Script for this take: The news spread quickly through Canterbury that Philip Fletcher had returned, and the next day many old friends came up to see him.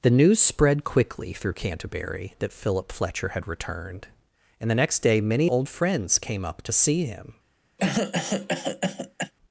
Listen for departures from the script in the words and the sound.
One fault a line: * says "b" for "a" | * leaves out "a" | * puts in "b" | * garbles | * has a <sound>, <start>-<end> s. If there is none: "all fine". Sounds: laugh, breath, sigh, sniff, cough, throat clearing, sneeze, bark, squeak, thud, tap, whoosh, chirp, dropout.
* has a cough, 7.8-9.3 s